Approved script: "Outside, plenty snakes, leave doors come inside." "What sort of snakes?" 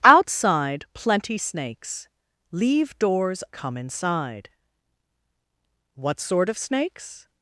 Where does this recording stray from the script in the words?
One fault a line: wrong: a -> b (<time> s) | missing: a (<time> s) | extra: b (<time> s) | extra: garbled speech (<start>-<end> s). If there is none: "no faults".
no faults